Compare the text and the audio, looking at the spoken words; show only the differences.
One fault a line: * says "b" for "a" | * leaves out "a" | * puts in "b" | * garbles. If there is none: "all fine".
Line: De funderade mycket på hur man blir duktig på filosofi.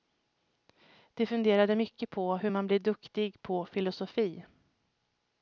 all fine